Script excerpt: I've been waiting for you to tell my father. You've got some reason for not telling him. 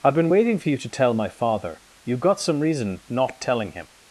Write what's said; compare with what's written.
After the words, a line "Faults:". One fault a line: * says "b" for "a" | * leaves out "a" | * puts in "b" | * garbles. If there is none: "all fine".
I've been waiting for you to tell my father. You've got some reason not telling him.
Faults:
* leaves out "for"